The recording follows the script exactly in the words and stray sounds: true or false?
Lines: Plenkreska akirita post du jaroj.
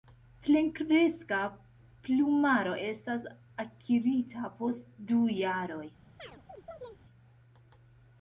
false